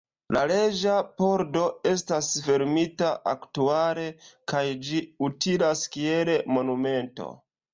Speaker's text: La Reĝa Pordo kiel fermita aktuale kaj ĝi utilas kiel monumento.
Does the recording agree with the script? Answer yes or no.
no